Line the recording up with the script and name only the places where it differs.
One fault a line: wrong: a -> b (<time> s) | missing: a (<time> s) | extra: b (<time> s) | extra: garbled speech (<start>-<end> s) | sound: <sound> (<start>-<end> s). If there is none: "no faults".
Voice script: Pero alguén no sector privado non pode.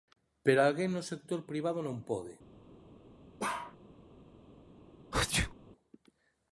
sound: bark (3.4-3.8 s)
sound: sneeze (5.1-5.5 s)